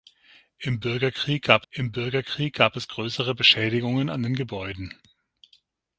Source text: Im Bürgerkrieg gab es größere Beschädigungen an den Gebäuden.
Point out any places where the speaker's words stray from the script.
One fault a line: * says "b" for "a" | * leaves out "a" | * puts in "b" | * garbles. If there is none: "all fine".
* puts in "im Bürgerkrieg gab"